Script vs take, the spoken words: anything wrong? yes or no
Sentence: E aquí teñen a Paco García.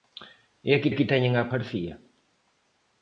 yes